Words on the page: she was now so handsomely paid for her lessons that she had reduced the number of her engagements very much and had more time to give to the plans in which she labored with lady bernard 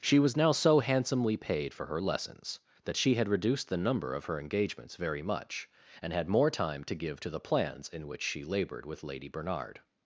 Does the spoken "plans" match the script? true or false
true